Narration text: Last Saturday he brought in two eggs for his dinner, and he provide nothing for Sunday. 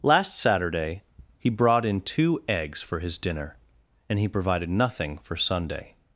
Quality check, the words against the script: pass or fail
fail